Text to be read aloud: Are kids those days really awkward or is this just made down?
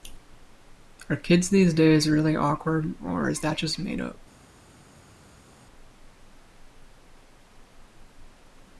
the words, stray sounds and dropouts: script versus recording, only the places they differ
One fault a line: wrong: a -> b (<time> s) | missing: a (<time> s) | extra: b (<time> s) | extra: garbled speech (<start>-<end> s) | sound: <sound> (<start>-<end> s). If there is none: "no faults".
wrong: those -> these (1.5 s)
wrong: this -> that (3.4 s)
wrong: down -> up (4.0 s)